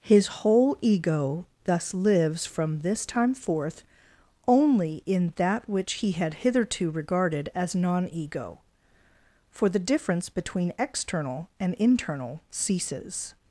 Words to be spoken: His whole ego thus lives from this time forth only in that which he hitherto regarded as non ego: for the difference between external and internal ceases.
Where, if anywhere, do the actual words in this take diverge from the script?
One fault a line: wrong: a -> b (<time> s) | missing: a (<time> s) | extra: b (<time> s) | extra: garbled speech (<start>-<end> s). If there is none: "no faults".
extra: had (6.1 s)